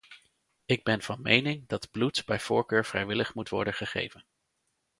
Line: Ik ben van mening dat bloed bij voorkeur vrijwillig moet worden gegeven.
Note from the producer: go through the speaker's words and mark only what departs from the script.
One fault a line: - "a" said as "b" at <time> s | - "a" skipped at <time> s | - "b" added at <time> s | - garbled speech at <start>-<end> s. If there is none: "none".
none